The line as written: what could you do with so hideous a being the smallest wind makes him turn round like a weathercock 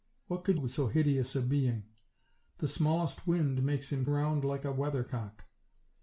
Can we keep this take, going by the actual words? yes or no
no